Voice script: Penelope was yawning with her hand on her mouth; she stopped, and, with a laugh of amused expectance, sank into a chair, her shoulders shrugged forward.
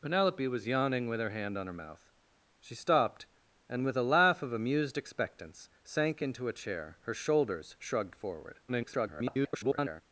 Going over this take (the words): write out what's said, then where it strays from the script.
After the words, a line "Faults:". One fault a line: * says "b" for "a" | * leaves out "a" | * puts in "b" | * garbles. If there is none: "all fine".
Penelope was yawning with her hand on her mouth; she stopped, and, with a laugh of amused expectance, sank into a chair, her shoulders shrugged forward. [garbled]
Faults:
* garbles